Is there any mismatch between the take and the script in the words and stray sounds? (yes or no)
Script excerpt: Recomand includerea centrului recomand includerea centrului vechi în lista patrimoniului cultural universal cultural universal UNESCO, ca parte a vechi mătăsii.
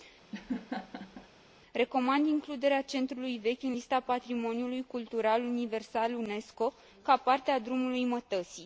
yes